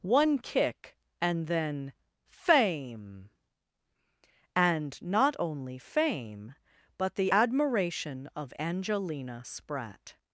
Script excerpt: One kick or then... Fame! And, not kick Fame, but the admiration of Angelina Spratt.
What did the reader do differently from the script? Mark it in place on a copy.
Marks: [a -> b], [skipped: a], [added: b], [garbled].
One kick [or -> and] then... Fame! And, not [kick -> only] Fame, but the admiration of Angelina Spratt.